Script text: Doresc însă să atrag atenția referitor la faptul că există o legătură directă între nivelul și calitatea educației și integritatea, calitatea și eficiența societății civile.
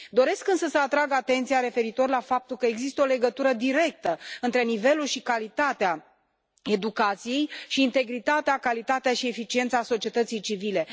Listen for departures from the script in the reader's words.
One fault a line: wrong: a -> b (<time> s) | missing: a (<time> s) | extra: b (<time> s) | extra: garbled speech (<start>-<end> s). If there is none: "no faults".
no faults